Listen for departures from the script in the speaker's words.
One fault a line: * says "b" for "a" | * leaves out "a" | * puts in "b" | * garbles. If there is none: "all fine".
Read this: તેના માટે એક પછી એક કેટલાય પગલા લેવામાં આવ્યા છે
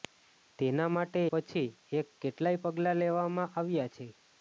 * leaves out "એક"